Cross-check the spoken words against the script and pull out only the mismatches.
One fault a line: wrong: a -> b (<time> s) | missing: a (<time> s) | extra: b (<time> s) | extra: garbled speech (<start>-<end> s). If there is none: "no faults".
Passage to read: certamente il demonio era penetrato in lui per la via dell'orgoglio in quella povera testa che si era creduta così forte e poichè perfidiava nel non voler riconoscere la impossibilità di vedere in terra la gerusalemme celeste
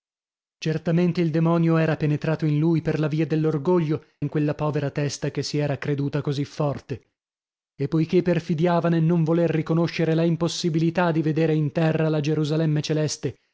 no faults